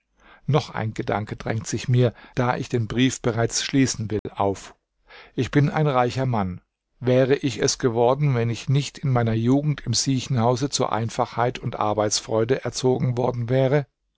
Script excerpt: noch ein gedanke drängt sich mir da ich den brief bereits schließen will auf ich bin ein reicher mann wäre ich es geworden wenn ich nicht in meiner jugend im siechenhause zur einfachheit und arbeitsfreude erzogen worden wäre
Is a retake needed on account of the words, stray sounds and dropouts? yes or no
yes